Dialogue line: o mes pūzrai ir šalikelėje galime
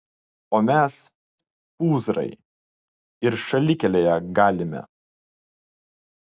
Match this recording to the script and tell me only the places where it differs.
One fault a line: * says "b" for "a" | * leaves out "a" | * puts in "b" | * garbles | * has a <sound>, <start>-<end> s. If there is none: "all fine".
all fine